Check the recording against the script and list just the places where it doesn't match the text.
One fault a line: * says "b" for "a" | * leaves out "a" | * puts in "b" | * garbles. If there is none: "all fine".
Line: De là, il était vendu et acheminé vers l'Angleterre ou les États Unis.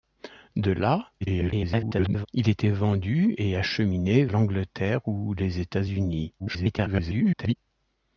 * garbles
* leaves out "vers"
* garbles